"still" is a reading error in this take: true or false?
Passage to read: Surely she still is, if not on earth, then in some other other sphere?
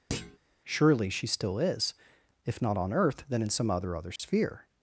false